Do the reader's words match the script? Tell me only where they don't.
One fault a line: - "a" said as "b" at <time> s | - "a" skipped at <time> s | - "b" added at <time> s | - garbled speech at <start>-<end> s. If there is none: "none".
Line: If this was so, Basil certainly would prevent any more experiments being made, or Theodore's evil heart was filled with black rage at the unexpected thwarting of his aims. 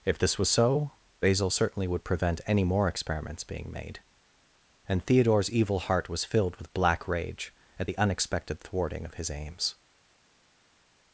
- "or" said as "and" at 4.9 s